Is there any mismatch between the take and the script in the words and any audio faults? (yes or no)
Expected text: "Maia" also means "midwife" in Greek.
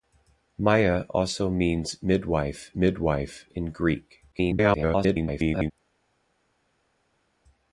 yes